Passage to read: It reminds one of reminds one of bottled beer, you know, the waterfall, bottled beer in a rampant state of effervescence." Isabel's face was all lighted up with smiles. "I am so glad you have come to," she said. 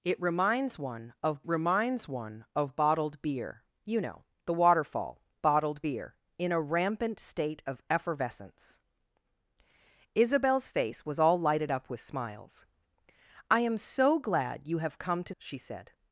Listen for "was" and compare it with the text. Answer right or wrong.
right